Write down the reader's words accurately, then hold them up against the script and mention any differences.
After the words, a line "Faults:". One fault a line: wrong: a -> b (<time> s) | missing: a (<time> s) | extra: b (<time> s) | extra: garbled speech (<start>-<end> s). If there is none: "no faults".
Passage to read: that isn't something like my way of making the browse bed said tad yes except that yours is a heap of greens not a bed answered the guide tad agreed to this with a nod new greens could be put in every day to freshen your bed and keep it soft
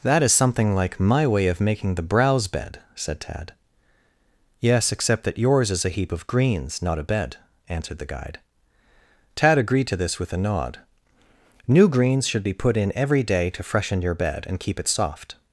that is something like my way of making the browse bed said tad yes except that yours is a heap of greens not a bed answered the guide tad agreed to this with a nod new greens should be put in every day to freshen your bed and keep it soft
Faults:
wrong: isn't -> is (0.2 s)
wrong: could -> should (12.3 s)